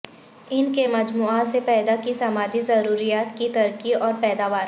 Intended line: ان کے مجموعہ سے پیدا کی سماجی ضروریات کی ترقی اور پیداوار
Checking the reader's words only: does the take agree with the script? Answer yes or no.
yes